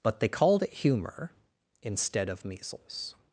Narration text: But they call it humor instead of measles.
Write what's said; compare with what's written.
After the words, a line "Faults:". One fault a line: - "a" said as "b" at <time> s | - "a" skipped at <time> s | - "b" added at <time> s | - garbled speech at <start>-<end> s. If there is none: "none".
But they called it humor instead of measles.
Faults:
- "call" said as "called" at 0.3 s